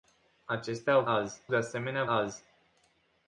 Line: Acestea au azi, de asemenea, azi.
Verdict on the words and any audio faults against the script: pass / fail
pass